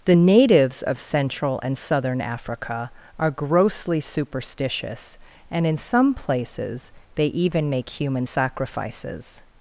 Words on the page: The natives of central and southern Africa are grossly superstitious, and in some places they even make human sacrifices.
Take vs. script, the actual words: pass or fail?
pass